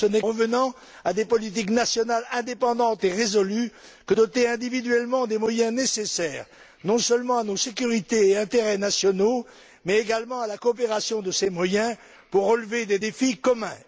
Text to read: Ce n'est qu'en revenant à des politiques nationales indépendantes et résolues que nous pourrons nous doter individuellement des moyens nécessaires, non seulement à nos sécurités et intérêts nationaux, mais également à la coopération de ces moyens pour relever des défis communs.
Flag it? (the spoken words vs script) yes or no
yes